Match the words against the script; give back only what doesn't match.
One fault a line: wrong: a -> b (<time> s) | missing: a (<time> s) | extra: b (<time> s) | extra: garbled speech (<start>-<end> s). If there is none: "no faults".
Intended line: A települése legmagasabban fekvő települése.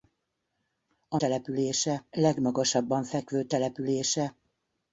no faults